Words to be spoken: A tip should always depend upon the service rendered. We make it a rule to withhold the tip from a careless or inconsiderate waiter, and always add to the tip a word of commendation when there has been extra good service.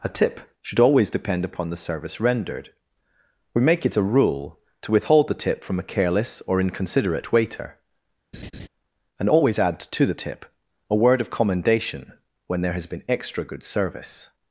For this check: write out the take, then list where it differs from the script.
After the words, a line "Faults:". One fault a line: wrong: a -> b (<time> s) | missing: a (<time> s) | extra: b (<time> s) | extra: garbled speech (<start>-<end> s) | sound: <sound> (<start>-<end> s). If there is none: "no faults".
A tip should always depend upon the service rendered. We make it a rule to withhold the tip from a careless or inconsiderate waiter, and always add to the tip a word of commendation when there has been extra good service.
Faults:
sound: laugh (8.3-8.7 s)